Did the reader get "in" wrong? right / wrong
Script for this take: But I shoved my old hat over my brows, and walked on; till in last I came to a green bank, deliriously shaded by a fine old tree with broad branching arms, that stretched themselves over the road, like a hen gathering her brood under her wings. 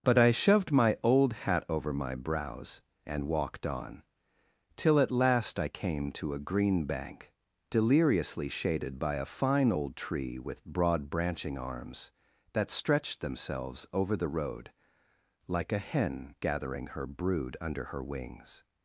wrong